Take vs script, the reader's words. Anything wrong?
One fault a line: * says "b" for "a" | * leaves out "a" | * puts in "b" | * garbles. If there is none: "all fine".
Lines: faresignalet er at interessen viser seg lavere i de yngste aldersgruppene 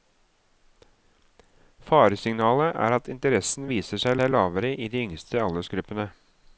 * puts in "seg"